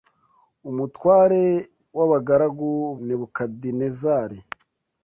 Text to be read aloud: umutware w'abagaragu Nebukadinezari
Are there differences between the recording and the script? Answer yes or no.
no